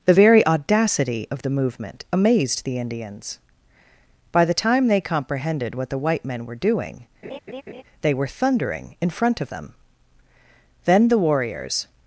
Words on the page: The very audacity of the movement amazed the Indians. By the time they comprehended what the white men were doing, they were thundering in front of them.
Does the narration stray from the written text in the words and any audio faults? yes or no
yes